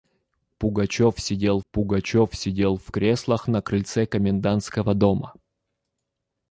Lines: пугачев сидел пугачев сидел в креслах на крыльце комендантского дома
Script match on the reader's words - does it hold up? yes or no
yes